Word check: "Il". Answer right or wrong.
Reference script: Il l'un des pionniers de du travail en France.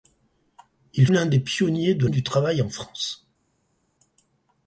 right